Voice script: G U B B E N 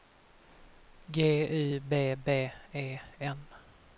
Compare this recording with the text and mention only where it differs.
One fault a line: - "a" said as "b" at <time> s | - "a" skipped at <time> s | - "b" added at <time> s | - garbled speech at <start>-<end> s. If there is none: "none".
none